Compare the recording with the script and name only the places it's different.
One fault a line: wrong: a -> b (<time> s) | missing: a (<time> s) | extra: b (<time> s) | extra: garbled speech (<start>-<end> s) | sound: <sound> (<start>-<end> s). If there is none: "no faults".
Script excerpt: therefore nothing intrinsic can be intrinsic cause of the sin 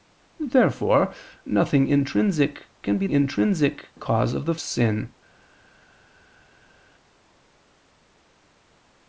no faults